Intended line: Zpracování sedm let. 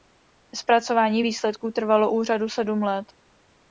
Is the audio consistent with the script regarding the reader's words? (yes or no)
no